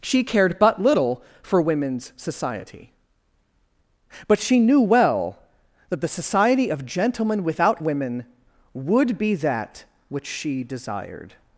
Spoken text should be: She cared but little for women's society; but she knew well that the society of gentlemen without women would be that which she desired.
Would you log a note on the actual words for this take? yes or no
no